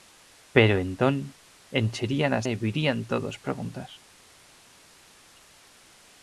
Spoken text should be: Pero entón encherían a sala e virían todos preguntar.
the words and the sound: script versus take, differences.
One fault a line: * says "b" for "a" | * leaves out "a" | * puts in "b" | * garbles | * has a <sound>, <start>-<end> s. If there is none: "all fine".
* leaves out "sala"